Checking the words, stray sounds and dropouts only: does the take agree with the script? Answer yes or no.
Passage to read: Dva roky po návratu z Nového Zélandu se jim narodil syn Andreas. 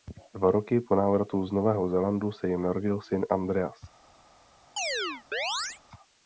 no